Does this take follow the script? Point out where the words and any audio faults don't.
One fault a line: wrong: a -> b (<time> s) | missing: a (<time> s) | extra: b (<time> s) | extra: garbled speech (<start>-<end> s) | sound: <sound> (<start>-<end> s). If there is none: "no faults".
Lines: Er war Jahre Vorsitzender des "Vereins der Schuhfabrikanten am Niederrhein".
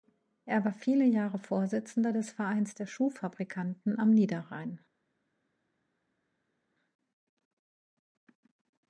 extra: viele (0.7 s)